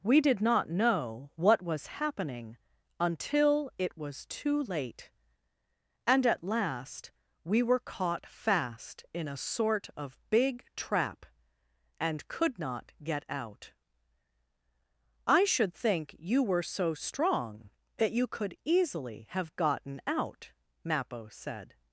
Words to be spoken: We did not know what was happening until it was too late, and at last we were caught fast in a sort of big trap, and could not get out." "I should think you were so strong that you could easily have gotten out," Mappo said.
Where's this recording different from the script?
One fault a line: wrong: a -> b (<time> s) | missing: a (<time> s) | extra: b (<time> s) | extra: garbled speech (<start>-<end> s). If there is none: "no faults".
no faults